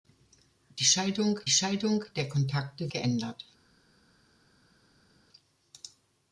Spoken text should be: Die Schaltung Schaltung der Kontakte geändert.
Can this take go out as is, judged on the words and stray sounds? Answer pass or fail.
pass